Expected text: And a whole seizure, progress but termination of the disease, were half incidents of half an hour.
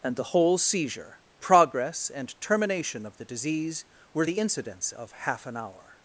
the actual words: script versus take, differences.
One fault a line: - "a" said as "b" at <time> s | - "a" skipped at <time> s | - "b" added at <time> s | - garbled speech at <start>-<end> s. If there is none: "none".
- "a" said as "the" at 0.1 s
- "but" said as "and" at 2.1 s
- "half" said as "the" at 4.2 s